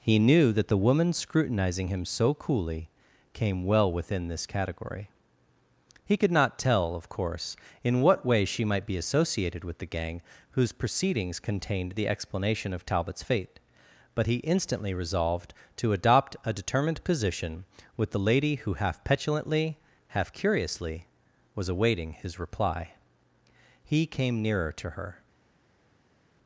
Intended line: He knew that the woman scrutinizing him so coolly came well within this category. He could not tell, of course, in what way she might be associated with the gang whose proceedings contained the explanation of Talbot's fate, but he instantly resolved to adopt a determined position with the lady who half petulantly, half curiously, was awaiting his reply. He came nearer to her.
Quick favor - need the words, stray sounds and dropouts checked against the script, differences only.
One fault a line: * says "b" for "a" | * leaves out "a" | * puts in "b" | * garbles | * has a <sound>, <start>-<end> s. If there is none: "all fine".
all fine